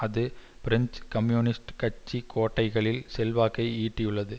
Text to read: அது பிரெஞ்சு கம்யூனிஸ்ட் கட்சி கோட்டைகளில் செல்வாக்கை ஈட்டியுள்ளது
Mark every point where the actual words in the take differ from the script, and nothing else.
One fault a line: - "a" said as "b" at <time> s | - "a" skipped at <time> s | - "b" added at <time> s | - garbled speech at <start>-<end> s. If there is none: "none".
none